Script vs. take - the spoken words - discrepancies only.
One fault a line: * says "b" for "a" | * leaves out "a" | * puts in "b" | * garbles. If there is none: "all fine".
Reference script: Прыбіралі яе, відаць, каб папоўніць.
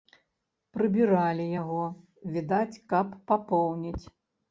* says "яго" for "яе"